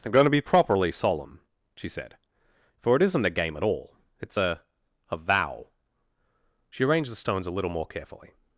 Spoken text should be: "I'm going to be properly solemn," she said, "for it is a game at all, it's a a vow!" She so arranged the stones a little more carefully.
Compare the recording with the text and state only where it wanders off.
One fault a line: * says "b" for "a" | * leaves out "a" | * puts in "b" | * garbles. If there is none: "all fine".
* says "isn't" for "is"
* leaves out "so"